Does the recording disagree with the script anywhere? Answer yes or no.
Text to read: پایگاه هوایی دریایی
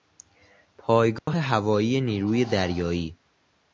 yes